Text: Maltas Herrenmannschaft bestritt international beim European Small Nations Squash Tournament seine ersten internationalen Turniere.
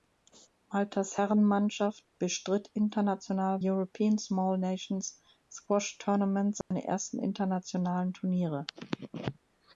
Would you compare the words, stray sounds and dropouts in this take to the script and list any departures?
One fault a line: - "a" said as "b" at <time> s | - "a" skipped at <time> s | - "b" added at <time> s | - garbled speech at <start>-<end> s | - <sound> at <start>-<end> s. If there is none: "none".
- "beim" skipped at 3.6 s
- dropout at 6.6-6.7 s